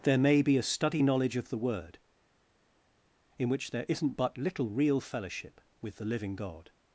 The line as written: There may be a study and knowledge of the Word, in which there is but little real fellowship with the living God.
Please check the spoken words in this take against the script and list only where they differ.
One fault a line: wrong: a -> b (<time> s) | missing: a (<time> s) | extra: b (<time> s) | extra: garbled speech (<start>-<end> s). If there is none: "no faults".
missing: and (1.0 s)
wrong: is -> isn't (3.9 s)